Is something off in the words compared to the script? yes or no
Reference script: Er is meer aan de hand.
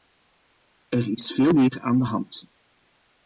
yes